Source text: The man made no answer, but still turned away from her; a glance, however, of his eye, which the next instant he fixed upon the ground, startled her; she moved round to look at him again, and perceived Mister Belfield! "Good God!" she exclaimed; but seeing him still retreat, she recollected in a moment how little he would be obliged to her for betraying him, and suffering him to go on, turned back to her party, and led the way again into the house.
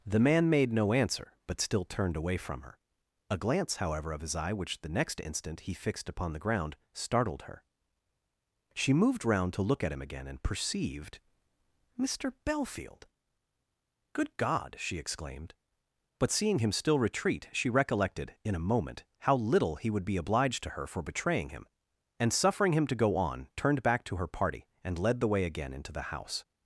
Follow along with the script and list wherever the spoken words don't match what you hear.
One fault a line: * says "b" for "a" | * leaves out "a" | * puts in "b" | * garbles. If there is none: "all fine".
all fine